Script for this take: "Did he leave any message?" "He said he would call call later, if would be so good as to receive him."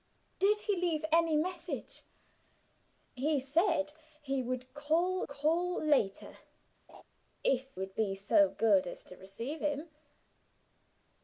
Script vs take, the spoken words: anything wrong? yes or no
no